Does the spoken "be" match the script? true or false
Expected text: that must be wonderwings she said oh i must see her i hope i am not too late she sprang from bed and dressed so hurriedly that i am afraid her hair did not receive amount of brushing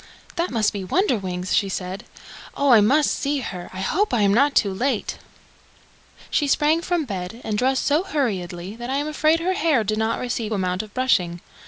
true